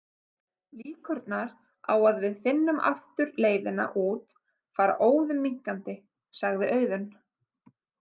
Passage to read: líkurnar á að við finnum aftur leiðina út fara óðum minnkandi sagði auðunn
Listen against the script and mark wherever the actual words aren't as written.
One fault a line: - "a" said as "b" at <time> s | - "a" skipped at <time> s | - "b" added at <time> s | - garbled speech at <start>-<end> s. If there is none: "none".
none